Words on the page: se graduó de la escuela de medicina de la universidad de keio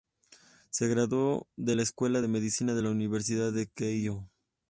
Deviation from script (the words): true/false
false